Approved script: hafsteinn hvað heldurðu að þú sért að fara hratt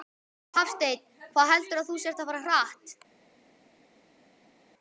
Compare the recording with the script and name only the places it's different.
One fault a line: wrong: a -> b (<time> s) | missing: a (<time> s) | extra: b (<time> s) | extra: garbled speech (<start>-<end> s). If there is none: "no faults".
no faults